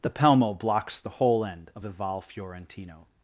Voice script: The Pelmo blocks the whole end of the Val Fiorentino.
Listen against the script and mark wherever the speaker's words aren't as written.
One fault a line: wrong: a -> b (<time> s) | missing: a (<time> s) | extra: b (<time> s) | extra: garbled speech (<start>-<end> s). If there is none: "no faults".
no faults